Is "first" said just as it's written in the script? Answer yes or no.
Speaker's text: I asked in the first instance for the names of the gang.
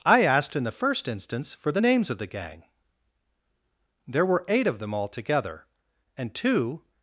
yes